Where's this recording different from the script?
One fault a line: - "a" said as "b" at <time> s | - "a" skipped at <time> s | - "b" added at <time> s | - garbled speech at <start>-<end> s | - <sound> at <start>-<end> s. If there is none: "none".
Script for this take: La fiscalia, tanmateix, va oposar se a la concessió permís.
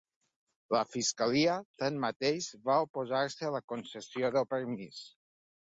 - "del" added at 4.4 s